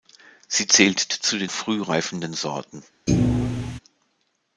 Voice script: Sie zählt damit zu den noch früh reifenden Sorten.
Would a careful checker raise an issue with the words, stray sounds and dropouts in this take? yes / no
yes